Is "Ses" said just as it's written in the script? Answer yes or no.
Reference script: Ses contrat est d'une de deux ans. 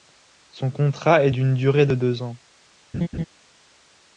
no